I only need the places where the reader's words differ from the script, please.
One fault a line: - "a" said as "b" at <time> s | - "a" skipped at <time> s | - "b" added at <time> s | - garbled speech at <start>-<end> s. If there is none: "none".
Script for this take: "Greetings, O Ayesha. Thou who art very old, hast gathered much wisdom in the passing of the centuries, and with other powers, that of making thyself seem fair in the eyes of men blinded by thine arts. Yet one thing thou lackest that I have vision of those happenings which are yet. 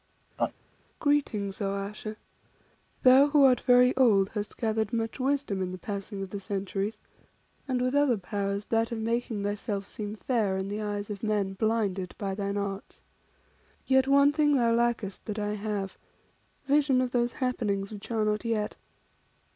- "not" added at 18.3 s